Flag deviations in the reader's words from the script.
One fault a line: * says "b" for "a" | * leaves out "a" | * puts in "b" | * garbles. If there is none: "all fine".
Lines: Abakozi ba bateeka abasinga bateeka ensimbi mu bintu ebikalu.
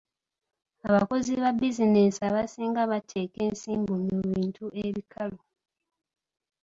* says "bizinensi" for "bateeka"